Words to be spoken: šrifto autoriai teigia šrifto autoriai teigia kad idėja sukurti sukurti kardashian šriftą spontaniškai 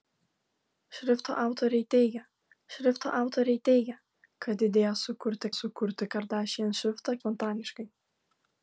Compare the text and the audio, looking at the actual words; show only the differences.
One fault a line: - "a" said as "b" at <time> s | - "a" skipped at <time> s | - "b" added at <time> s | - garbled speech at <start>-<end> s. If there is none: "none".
none